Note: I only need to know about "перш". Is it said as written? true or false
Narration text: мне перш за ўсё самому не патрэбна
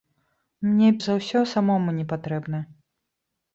false